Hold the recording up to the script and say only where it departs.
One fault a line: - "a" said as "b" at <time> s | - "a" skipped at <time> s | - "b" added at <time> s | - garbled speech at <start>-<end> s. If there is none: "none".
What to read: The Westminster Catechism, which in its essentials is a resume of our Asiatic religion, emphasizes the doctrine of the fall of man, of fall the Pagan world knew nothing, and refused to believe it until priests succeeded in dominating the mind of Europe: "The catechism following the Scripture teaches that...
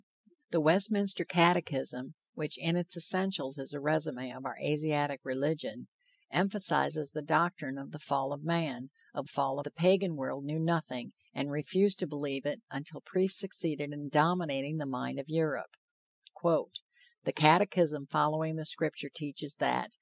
none